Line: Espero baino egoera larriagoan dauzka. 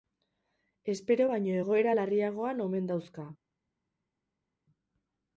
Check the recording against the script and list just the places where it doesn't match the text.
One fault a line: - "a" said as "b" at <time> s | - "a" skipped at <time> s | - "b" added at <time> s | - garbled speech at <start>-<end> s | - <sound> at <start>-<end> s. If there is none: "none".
- "omen" added at 2.7 s